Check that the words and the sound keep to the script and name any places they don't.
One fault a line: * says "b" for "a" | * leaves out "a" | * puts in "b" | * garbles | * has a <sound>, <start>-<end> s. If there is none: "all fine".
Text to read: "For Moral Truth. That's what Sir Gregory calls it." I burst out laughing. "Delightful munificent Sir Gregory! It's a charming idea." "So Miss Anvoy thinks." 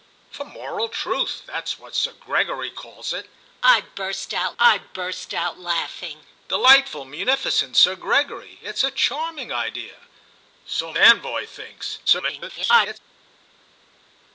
* puts in "I burst out"
* leaves out "Miss"
* garbles